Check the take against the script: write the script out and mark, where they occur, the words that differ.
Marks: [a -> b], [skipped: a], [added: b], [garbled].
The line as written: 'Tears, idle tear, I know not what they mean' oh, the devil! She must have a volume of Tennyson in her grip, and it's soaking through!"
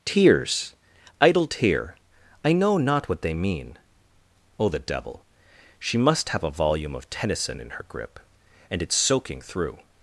'Tears, idle tear, I know not what they mean' oh, the devil! She must have a volume of Tennyson in her grip, and it's soaking through!"